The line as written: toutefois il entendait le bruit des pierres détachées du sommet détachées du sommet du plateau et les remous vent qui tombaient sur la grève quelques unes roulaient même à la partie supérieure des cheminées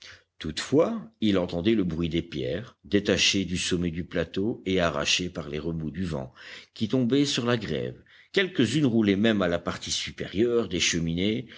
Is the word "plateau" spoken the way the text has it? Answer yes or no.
no